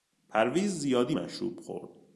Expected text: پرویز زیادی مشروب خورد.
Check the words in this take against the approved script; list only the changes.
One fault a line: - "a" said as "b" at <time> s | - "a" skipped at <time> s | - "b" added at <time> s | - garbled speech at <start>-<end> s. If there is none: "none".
none